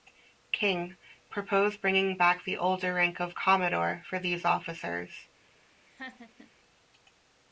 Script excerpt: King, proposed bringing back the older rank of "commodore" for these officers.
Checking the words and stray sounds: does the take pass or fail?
fail